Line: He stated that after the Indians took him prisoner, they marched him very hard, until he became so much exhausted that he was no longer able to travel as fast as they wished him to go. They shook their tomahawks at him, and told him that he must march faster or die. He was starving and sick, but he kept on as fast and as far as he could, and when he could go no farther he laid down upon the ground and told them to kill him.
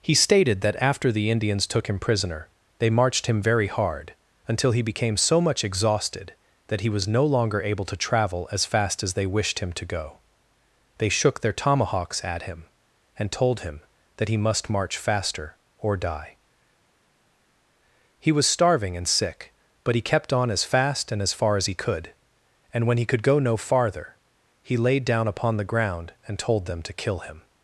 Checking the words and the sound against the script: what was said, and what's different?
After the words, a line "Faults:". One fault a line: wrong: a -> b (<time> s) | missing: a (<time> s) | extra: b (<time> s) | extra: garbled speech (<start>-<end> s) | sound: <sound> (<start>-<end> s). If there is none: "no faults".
He stated that after the Indians took him prisoner, they marched him very hard, until he became so much exhausted that he was no longer able to travel as fast as they wished him to go. They shook their tomahawks at him, and told him that he must march faster or die. He was starving and sick, but he kept on as fast and as far as he could, and when he could go no farther he laid down upon the ground and told them to kill him.
Faults:
no faults